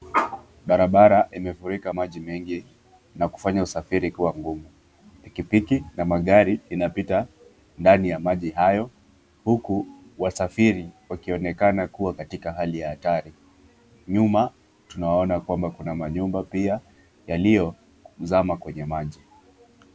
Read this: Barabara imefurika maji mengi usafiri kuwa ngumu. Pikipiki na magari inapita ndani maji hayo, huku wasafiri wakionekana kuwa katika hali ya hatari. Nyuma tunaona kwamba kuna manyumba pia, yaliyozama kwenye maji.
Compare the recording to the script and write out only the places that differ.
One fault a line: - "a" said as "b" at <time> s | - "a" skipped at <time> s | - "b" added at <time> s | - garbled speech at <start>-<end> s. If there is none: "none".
- "na kufanya" added at 3.1 s
- "ya" added at 8.1 s